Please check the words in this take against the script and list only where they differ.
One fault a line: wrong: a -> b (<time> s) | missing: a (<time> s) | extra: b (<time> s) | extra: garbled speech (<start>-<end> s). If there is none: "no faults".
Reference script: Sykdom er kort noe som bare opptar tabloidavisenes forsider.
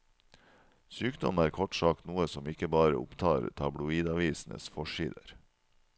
extra: sagt (1.8 s)
extra: ikke (2.5 s)